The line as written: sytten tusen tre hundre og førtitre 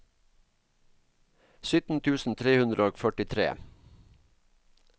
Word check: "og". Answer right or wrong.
right